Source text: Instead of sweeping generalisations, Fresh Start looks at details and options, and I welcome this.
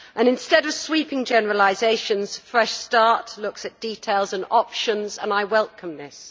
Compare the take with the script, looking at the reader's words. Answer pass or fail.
pass